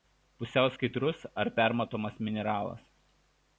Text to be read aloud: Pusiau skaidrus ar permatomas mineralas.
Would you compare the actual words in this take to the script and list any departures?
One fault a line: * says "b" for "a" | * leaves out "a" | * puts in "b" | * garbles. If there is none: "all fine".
all fine